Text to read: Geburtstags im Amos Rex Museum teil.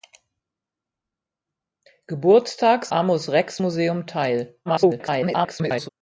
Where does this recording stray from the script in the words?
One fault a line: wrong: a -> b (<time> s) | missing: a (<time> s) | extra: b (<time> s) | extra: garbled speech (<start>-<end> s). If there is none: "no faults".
missing: im (2.9 s)
extra: garbled speech (4.7-5.9 s)